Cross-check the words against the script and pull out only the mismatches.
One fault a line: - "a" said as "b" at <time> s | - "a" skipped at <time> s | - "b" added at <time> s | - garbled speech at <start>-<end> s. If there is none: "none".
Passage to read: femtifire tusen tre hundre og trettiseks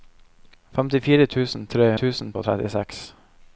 - "hundre" said as "tusen" at 2.0 s